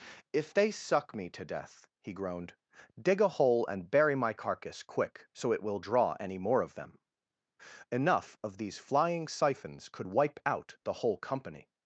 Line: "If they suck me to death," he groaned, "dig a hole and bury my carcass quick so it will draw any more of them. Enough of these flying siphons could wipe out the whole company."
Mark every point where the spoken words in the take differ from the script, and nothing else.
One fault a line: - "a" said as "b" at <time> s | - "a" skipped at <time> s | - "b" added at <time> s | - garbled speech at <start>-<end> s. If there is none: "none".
none